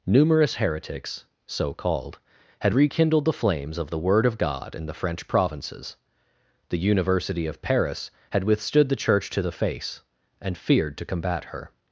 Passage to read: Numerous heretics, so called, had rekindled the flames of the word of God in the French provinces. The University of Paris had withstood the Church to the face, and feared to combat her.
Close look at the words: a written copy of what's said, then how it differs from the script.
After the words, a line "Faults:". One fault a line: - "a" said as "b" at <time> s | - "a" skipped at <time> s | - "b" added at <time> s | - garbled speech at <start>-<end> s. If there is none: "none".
Numerous heretics, so called, had rekindled the flames of the word of God in the French provinces. The University of Paris had withstood the Church to the face, and feared to combat her.
Faults:
none